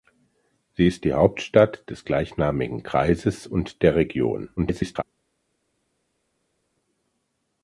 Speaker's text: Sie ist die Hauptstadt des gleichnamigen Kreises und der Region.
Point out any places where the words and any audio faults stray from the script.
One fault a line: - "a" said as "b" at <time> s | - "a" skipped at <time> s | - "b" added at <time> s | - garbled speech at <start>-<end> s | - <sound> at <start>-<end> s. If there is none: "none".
- garbled speech at 4.6-5.0 s